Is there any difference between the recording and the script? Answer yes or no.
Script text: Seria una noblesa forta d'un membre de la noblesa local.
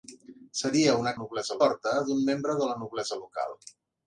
no